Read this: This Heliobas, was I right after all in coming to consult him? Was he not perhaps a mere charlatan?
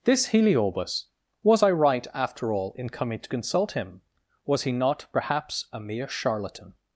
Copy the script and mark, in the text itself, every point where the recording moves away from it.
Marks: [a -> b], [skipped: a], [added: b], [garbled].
This Heliobas, was I right after all in coming to consult him? Was he not perhaps a mere charlatan?